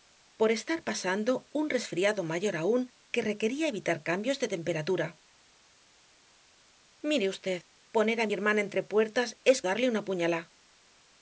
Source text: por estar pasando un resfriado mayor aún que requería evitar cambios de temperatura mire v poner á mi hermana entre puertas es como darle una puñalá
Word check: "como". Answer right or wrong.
wrong